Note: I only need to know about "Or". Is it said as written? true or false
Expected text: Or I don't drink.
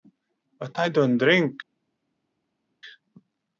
false